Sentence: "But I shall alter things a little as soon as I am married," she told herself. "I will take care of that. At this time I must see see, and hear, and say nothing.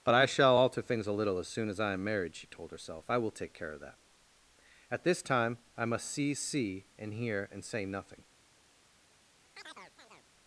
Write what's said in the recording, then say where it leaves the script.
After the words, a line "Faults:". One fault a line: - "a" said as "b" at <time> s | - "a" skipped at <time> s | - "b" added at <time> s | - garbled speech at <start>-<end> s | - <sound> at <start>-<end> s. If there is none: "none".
"But I shall alter things a little as soon as I am married," she told herself. "I will take care of that. At this time I must see see, and hear, and say nothing.
Faults:
- chirp at 9.5-10.3 s